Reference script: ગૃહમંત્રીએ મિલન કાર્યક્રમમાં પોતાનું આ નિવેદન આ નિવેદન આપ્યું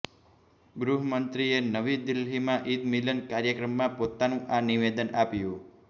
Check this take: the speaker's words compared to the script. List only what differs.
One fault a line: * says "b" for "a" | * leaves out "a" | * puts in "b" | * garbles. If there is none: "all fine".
* puts in "નવી દિલ્હીમાં ઈદ"
* leaves out "આ નિવેદન"